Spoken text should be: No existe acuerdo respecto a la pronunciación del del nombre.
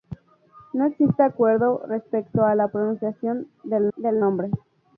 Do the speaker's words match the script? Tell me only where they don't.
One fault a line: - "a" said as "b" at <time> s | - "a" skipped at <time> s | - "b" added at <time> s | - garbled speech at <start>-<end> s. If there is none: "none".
none